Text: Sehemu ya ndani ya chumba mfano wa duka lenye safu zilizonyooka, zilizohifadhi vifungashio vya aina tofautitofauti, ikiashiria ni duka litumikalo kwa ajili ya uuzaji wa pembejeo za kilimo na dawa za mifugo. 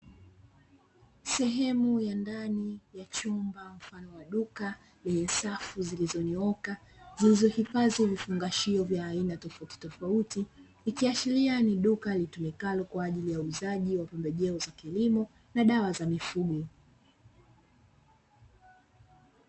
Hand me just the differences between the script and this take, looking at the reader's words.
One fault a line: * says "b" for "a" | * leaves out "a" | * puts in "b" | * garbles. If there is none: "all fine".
all fine